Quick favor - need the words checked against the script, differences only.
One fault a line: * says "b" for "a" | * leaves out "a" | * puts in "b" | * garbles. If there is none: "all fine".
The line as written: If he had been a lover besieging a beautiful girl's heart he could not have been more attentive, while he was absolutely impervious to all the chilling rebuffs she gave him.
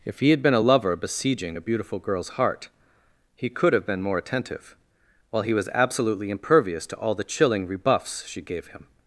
* leaves out "not"